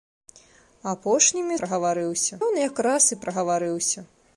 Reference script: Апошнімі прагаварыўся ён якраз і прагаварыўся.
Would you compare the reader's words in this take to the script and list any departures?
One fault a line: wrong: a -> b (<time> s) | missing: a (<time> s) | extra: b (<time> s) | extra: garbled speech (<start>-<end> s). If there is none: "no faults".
no faults